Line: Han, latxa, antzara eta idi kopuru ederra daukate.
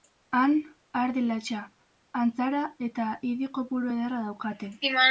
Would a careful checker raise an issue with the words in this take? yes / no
yes